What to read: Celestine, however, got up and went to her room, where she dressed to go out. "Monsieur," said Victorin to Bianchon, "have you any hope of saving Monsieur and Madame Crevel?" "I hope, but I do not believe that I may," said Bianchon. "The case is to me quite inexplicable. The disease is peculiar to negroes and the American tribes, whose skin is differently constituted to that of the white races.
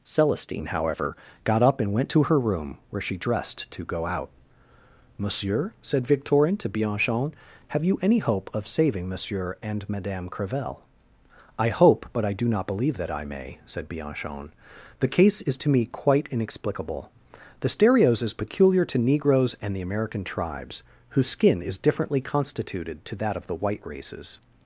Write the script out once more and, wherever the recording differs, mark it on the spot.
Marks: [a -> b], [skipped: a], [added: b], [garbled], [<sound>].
Celestine, however, got up and went to her room, where she dressed to go out. "Monsieur," said Victorin to Bianchon, "have you any hope of saving Monsieur and Madame Crevel?" "I hope, but I do not believe that I may," said Bianchon. "The case is to me quite inexplicable. The [disease -> stereos] is peculiar to negroes and the American tribes, whose skin is differently constituted to that of the white races.